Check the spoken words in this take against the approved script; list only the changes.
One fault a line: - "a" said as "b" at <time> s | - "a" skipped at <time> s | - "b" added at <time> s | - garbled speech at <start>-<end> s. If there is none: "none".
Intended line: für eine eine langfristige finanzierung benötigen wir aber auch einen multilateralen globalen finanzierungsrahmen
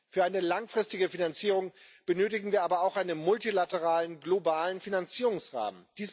- "eine" skipped at 0.4 s